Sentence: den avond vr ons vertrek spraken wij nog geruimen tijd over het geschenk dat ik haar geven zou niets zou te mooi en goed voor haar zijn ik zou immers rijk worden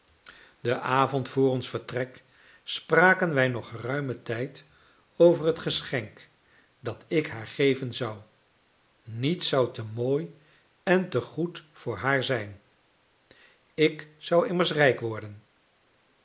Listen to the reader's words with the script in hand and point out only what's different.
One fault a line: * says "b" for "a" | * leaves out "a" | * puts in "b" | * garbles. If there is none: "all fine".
* puts in "te"